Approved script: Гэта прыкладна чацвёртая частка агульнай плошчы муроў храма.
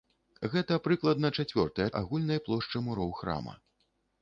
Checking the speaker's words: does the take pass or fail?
fail